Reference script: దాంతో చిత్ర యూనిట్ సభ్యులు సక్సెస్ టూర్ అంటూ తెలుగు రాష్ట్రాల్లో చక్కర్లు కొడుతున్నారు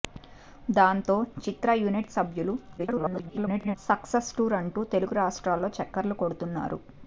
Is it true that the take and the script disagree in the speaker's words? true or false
true